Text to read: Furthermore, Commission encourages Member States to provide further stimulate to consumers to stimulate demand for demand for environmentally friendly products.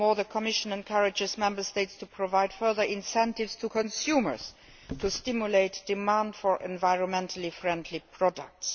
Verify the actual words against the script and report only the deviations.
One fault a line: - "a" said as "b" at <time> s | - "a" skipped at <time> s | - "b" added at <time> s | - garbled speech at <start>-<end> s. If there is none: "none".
- "the" added at 0.1 s
- "stimulate" said as "incentives" at 2.8 s
- "demand for" skipped at 6.6 s